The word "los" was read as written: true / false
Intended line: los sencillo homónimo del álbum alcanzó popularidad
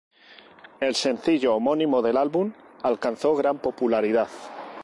false